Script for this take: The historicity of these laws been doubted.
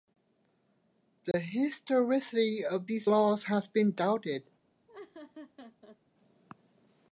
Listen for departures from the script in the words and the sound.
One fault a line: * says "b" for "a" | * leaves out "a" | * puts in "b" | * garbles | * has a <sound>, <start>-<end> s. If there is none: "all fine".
* has a dropout, 1.3-1.3 s
* puts in "has"
* has a laugh, 4.9-6.0 s